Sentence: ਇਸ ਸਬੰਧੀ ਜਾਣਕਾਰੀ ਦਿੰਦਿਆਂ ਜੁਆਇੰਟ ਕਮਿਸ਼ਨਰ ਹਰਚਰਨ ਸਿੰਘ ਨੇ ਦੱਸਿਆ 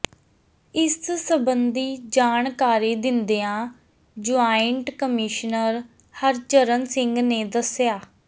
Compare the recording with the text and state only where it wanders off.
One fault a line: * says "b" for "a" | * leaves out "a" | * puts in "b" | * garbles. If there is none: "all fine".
all fine